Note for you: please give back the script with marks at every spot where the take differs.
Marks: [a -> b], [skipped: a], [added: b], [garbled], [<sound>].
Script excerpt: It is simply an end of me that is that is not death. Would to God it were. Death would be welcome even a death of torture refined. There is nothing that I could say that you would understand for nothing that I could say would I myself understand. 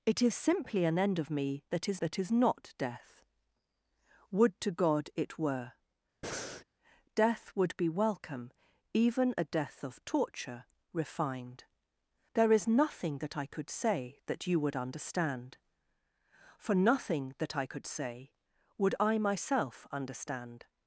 It is simply an end of me that is that is not death. Would to God it were. [breath] Death would be welcome even a death of torture refined. There is nothing that I could say that you would understand for nothing that I could say would I myself understand.